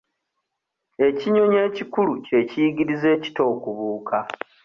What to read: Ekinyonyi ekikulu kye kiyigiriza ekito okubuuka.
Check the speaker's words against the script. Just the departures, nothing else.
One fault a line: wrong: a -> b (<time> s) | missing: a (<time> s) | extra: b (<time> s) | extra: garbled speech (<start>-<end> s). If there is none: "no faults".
no faults